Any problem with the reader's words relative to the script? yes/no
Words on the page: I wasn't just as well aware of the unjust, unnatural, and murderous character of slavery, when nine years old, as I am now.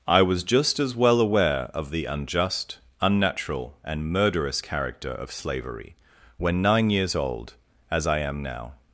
yes